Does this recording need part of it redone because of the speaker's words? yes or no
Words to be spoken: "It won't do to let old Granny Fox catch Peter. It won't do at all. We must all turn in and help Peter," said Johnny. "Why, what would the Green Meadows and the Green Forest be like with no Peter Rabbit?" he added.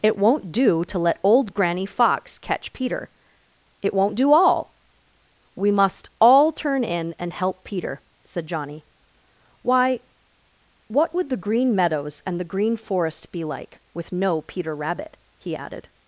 yes